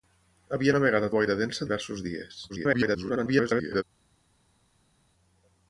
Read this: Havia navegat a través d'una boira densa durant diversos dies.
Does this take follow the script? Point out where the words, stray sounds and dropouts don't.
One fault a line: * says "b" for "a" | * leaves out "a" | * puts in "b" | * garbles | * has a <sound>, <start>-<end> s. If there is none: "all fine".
* leaves out "través d'una"
* leaves out "durant"
* garbles